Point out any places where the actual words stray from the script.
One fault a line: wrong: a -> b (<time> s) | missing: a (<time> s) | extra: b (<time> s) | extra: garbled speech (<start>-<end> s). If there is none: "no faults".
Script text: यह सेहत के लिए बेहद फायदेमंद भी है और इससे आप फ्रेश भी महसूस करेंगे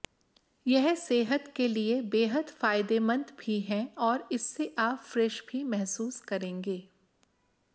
no faults